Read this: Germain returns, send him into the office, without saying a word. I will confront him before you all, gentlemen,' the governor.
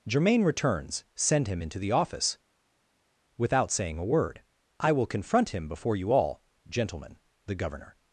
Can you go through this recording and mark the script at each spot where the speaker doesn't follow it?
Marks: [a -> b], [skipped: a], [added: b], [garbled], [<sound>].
Germain returns, send him into the office, without saying a word. I will confront him before you all, gentlemen,' the governor.